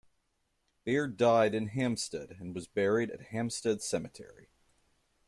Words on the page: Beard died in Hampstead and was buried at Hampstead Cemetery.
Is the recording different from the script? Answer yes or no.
no